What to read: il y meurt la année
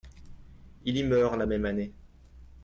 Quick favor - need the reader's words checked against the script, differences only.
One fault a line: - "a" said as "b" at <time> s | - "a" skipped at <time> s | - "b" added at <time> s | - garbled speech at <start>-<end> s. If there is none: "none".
- "même" added at 1.4 s